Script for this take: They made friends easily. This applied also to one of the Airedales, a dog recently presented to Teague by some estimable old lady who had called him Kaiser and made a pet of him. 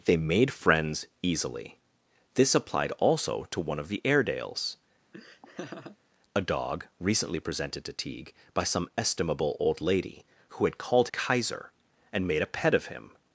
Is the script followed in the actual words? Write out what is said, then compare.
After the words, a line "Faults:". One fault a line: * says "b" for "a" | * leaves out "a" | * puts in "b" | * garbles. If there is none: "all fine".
They made friends easily. This applied also to one of the Airedales, a dog recently presented to Teague by some estimable old lady who had called Kaiser and made a pet of him.
Faults:
* leaves out "him"